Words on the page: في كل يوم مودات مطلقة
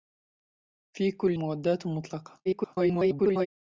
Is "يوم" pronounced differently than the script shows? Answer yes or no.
yes